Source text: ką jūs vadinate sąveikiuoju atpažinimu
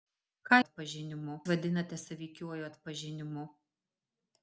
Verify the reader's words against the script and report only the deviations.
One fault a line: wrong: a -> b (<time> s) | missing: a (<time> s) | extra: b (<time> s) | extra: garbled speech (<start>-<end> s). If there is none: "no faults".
wrong: jūs -> atpažinimu (0.6 s)